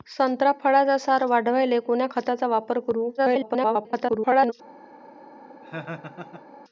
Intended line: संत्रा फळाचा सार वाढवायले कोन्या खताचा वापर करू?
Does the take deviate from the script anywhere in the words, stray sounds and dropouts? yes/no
yes